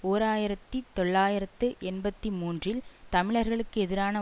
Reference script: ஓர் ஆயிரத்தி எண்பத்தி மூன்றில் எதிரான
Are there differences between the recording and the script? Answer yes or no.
yes